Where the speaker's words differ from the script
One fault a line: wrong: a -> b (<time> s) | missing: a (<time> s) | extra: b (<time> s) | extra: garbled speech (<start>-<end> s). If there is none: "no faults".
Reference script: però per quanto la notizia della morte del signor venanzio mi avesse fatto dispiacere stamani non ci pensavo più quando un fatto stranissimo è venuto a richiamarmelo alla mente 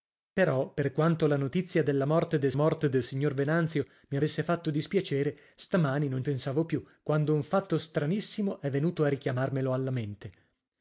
extra: morte del (2.5 s)
missing: ci (6.2 s)